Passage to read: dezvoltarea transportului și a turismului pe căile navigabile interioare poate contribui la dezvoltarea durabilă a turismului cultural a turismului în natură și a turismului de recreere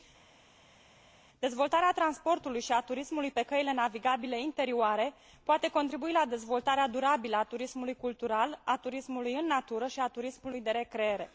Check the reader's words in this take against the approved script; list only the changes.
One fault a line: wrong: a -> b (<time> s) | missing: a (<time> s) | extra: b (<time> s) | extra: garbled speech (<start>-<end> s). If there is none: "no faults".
no faults